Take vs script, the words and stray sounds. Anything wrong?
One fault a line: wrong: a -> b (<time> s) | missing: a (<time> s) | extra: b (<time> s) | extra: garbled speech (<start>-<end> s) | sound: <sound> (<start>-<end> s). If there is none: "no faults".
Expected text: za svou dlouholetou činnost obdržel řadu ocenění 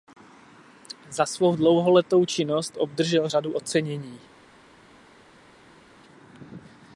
no faults